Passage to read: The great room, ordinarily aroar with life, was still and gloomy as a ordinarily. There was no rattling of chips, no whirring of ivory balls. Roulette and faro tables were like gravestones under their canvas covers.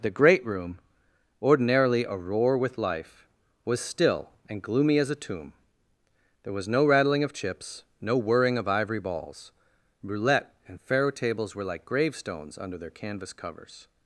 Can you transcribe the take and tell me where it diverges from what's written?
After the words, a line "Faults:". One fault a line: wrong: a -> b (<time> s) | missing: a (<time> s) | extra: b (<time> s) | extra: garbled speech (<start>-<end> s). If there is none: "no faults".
The great room, ordinarily aroar with life, was still and gloomy as a tomb. There was no rattling of chips, no whirring of ivory balls. Roulette and faro tables were like gravestones under their canvas covers.
Faults:
wrong: ordinarily -> tomb (5.2 s)